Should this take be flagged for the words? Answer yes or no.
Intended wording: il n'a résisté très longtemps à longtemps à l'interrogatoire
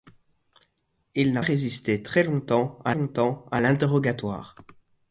no